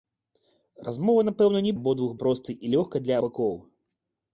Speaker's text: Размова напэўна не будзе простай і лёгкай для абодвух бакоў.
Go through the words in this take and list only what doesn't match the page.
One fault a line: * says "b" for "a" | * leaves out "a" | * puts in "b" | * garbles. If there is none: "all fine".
* says "абодвух" for "будзе"
* leaves out "абодвух"